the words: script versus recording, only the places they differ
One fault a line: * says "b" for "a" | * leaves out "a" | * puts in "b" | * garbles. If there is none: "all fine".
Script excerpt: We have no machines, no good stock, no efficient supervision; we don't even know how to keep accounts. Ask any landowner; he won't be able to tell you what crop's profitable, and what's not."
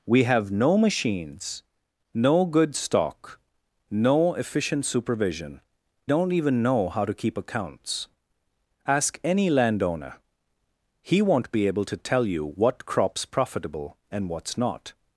* leaves out "we"